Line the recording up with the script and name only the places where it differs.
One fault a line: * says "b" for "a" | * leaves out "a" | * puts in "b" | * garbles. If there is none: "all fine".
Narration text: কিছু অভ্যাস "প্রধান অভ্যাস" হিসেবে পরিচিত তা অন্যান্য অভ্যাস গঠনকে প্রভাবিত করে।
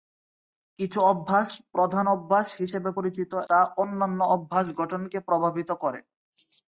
all fine